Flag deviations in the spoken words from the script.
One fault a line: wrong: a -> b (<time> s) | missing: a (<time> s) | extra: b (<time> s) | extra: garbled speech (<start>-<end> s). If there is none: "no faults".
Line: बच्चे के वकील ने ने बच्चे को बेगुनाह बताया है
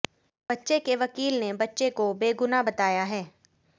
missing: ने (1.5 s)